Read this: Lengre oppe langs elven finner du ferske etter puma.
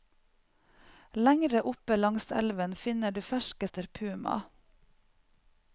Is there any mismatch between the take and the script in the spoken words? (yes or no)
no